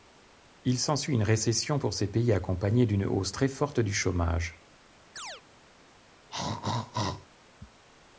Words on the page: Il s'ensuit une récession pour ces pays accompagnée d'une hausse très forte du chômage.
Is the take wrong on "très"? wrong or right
right